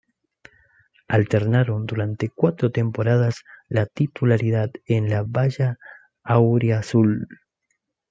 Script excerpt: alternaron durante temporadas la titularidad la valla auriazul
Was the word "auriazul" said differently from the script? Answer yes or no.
no